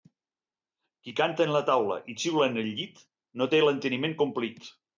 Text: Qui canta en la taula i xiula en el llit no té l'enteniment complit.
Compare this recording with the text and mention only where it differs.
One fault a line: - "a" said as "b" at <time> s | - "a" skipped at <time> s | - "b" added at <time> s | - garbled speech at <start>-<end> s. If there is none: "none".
none